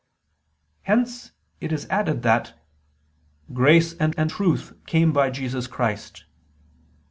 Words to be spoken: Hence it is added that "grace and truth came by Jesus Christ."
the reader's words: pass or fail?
fail